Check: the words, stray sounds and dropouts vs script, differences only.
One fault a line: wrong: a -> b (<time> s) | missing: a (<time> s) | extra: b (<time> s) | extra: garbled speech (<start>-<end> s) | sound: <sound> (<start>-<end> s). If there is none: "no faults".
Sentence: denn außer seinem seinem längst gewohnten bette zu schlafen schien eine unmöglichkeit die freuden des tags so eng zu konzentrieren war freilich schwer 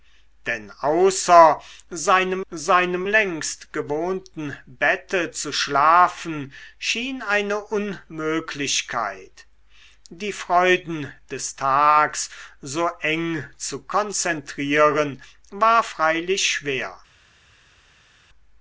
no faults